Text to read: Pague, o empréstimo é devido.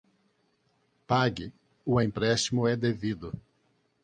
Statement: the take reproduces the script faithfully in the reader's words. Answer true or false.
true